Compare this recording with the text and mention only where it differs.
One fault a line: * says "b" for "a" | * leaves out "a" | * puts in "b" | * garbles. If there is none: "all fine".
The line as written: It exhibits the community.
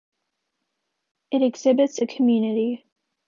all fine